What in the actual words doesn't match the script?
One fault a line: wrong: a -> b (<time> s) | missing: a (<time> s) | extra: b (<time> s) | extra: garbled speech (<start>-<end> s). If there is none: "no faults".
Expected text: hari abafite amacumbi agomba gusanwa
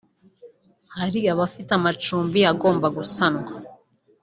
no faults